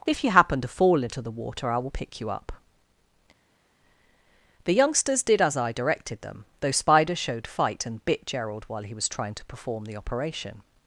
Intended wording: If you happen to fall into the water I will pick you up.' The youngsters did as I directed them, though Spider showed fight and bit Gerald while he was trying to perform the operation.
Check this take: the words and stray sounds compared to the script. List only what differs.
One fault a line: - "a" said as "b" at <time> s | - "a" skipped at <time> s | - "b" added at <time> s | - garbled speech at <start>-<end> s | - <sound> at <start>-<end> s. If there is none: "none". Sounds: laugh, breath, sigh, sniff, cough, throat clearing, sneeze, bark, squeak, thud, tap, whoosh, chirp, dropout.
none